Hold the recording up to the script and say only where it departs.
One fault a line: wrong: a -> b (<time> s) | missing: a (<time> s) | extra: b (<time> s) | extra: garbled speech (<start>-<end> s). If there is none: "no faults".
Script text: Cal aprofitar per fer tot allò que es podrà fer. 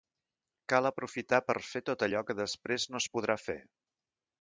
extra: després no (2.4 s)